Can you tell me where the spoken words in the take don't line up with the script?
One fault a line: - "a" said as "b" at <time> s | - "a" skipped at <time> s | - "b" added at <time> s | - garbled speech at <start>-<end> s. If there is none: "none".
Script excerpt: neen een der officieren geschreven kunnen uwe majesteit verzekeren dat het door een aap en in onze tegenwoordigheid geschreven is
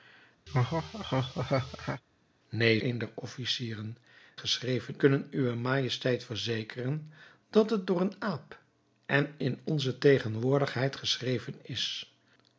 none